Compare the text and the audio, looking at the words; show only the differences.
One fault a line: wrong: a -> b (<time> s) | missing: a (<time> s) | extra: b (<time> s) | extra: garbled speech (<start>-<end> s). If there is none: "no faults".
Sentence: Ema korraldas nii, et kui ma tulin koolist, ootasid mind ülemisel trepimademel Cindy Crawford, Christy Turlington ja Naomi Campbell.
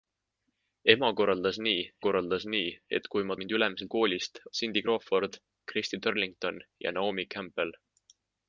extra: korraldas nii (2.0 s)
missing: tulin koolist ootasid (3.4 s)
wrong: trepimademel -> koolist (4.0 s)